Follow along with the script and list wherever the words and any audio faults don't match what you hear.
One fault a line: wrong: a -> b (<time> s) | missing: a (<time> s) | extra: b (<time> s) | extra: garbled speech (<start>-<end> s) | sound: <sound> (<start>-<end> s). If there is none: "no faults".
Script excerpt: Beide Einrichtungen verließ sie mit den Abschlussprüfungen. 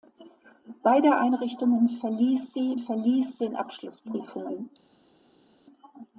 wrong: mit -> verließ (2.7 s)